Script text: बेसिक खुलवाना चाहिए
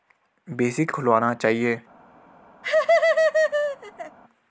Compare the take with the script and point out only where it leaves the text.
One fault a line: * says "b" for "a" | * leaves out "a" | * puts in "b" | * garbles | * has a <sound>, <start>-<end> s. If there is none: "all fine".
* has a laugh, 2.6-4.2 s